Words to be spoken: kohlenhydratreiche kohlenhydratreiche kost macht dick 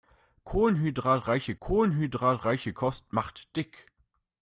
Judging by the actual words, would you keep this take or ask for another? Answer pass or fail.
pass